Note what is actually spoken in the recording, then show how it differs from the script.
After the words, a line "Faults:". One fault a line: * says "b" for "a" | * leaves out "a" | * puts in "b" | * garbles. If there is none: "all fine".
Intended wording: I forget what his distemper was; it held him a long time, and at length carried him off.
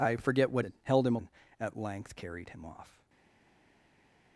I forget what; it held him a and at length carried him off.
Faults:
* leaves out "his distemper was"
* leaves out "long time"